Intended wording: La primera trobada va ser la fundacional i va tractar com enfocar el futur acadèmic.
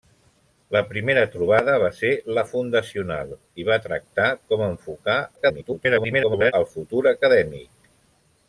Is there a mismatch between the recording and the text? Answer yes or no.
yes